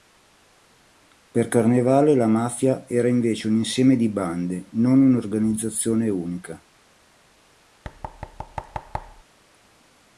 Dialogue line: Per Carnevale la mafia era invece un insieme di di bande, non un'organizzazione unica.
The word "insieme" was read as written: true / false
true